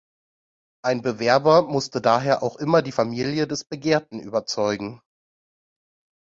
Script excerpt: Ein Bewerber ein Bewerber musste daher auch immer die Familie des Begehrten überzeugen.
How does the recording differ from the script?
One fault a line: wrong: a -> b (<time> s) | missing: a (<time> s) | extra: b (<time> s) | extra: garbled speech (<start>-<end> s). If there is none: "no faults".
missing: ein Bewerber (1.6 s)